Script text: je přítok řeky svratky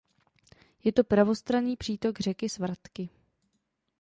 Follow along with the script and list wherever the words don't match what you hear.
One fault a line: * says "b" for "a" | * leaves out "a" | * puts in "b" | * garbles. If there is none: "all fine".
* puts in "to pravostranný"